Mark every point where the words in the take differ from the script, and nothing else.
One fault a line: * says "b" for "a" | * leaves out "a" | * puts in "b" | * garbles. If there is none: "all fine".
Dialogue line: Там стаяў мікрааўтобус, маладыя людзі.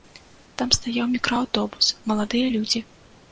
all fine